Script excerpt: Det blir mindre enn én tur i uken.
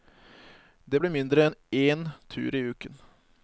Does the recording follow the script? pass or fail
pass